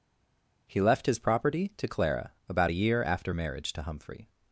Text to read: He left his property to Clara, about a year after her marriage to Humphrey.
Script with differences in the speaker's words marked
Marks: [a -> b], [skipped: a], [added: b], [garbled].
He left his property to Clara, about a year after [skipped: her] marriage to Humphrey.